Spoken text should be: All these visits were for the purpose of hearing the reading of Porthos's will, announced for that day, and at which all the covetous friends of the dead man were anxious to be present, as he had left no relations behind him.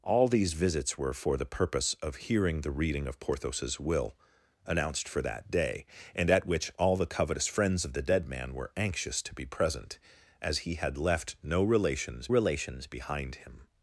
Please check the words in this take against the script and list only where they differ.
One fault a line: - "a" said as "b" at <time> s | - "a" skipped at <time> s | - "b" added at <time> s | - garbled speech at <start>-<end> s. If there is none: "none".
- "relations" added at 12.3 s